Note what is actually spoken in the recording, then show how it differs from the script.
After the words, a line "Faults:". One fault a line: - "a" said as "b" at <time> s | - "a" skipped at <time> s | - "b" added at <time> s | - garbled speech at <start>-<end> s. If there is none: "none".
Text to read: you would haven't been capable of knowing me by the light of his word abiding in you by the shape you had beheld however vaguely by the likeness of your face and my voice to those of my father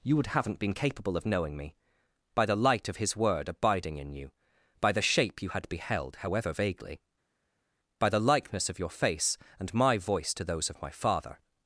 you would haven't been capable of knowing me by the light of his word abiding in you by the shape you had beheld however vaguely by the likeness of your face and my voice to those of my father
Faults:
none